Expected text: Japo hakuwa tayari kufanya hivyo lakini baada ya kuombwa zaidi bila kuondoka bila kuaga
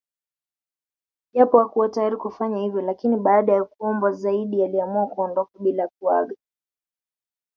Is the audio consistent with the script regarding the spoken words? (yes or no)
no